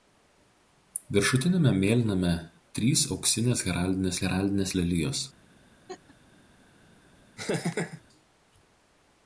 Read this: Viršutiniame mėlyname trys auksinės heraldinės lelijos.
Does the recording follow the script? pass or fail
fail